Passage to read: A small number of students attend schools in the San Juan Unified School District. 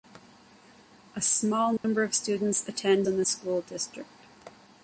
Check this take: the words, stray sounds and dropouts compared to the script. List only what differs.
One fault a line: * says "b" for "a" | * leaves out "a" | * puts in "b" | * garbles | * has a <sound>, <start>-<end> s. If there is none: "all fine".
* has a dropout, 1.8-1.8 s
* leaves out "schools"
* leaves out "San Juan Unified"